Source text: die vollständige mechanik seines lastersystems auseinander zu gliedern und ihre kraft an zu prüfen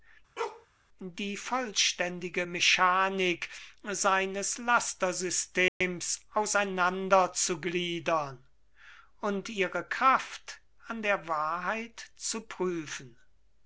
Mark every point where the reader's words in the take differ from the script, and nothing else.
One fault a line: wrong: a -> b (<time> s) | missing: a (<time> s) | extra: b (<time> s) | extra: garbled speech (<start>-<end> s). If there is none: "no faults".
extra: der wahrheit (11.0 s)